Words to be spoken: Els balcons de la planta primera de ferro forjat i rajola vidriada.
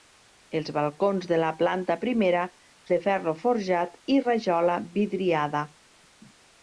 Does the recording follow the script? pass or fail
pass